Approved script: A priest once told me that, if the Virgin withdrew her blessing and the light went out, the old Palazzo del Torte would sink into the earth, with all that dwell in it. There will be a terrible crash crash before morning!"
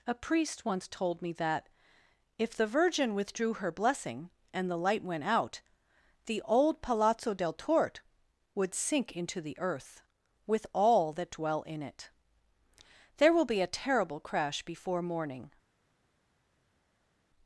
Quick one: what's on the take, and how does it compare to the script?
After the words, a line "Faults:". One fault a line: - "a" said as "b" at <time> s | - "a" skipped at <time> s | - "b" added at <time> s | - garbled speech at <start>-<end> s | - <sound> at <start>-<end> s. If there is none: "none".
A priest once told me that, if the Virgin withdrew her blessing and the light went out, the old Palazzo del Torte would sink into the earth, with all that dwell in it. There will be a terrible crash before morning!"
Faults:
- "crash" skipped at 14.6 s